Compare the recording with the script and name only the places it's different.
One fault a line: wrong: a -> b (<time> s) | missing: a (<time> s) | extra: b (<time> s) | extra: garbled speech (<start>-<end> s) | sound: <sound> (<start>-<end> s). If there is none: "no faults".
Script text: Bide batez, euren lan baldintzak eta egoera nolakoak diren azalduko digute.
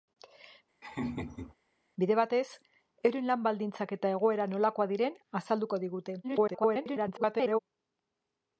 sound: laugh (0.8-1.5 s)
extra: garbled speech (6.2-7.6 s)